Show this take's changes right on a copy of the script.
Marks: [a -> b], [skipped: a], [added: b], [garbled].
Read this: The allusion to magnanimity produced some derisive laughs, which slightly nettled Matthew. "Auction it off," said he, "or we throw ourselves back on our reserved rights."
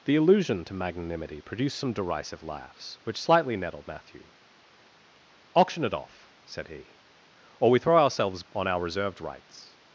The allusion to magnanimity produced some derisive laughs, which slightly nettled Matthew. "Auction it off," said he, "or we throw ourselves [skipped: back] on our reserved rights."